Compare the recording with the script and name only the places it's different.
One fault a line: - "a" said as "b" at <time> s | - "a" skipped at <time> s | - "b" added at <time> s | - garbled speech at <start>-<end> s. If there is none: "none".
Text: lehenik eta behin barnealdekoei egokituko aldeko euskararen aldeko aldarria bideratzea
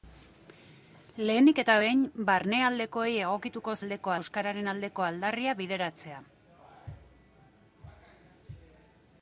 none